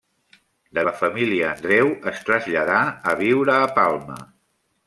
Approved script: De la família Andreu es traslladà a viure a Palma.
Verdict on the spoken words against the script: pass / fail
pass